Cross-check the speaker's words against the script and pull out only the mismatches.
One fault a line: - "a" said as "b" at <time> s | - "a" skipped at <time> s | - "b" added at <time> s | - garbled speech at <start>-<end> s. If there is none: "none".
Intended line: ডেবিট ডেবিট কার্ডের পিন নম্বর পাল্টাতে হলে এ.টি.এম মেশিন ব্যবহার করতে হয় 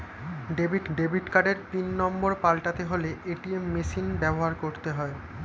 none